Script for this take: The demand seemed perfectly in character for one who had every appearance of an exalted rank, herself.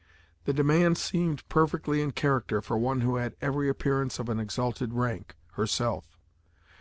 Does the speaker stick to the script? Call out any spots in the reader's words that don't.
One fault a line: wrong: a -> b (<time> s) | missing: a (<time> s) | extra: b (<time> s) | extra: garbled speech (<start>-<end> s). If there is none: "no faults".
no faults